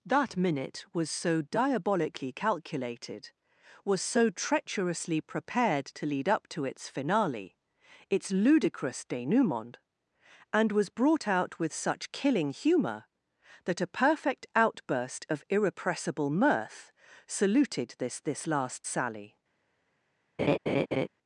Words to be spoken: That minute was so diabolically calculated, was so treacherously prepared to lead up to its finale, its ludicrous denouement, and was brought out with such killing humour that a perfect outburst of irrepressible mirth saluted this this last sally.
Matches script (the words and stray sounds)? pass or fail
fail